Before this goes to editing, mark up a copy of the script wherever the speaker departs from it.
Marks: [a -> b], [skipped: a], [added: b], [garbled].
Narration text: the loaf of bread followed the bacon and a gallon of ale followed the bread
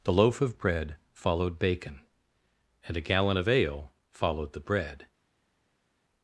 the loaf of bread followed [skipped: the] bacon and a gallon of ale followed the bread